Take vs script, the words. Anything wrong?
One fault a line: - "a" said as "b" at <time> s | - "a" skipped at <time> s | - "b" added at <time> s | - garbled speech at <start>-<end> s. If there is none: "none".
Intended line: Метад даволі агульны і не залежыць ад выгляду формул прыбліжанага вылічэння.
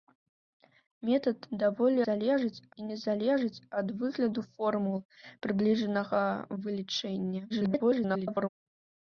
- "агульны" said as "залежыць" at 2.1 s
- garbled speech at 7.5-8.5 s